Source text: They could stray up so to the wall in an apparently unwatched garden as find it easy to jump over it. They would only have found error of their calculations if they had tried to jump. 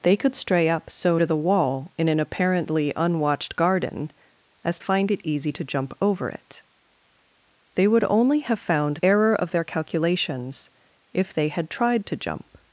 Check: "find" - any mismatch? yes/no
no